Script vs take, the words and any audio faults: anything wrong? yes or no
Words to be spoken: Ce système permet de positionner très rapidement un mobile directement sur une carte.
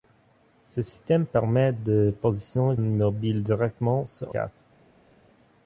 yes